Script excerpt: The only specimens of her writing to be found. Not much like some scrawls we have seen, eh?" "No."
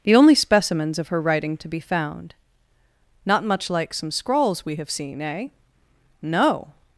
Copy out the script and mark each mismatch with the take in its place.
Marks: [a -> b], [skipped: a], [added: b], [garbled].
The only specimens of her writing to be found. Not much like some scrawls we have seen, eh?" "No."